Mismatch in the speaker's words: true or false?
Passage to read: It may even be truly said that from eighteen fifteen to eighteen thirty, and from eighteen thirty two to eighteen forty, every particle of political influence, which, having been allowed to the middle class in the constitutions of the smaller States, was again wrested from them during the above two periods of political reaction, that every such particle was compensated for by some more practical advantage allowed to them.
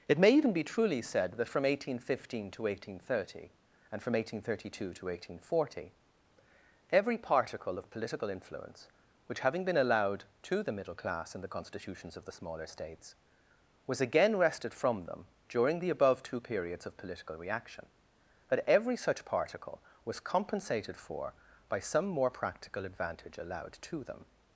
false